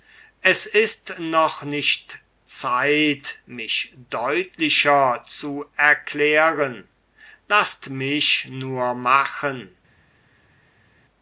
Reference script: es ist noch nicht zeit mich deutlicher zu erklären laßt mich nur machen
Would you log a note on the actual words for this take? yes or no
no